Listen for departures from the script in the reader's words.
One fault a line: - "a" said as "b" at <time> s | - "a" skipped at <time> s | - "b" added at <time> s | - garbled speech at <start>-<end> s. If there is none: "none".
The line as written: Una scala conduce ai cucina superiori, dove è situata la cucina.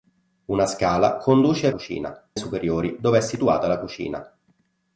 none